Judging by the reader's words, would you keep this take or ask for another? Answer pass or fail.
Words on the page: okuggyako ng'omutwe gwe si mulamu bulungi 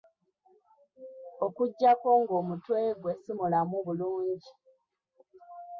pass